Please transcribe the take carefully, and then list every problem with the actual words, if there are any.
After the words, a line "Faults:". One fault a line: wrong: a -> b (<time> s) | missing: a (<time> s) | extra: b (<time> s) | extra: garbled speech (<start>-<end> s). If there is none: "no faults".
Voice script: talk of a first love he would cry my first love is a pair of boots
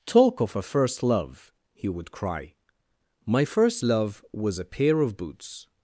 talk of a first love he would cry my first love was a pair of boots
Faults:
wrong: is -> was (4.3 s)